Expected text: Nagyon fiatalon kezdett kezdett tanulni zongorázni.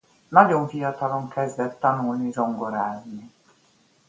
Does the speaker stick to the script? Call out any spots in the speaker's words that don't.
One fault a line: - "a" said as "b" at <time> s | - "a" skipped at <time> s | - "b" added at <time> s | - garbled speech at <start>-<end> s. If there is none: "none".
- "kezdett" skipped at 1.8 s